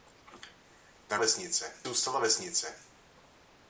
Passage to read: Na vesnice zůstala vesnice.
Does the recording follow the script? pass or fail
pass